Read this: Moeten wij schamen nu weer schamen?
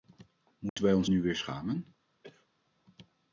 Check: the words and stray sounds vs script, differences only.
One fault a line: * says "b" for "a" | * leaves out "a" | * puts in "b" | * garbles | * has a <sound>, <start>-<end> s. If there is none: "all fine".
* has a dropout, 0.7-0.8 s
* says "ons" for "schamen"
* has a cough, 2.2-2.5 s